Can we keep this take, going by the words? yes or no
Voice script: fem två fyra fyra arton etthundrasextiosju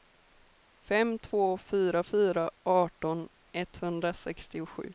yes